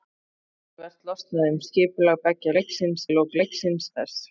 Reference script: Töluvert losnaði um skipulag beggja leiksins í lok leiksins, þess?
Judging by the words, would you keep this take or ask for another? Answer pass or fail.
pass